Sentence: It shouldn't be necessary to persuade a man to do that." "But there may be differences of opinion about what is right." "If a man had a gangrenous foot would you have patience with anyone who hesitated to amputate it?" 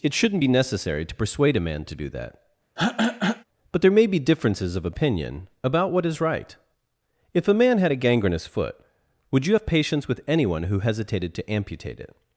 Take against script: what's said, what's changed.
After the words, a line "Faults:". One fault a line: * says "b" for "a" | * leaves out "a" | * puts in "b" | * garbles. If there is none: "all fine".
It shouldn't be necessary to persuade a man to do that." "But there may be differences of opinion about what is right." "If a man had a gangrenous foot would you have patience with anyone who hesitated to amputate it?"
Faults:
all fine